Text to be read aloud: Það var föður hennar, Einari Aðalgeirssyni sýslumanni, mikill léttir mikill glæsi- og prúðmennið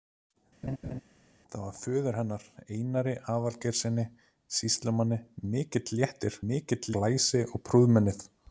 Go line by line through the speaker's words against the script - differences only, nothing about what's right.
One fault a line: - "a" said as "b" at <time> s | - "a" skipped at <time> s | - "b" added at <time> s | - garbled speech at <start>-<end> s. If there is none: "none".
none